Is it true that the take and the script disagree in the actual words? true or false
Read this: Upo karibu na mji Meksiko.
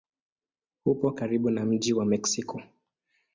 true